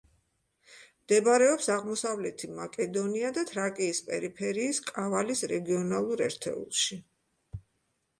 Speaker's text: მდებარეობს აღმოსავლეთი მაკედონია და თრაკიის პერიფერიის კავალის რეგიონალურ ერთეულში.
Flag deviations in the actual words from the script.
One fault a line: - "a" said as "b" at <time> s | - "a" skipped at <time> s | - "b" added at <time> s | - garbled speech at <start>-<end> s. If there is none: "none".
none